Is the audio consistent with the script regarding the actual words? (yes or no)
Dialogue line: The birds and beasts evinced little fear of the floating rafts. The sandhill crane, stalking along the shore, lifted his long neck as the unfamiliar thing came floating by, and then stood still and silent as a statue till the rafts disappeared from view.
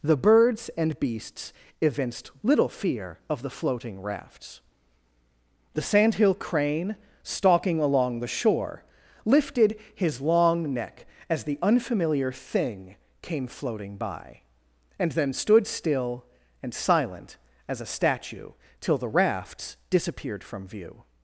yes